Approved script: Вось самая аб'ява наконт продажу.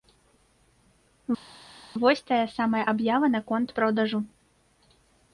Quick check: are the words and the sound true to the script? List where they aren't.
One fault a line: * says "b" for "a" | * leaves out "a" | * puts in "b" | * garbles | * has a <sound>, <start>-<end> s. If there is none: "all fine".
* puts in "тая"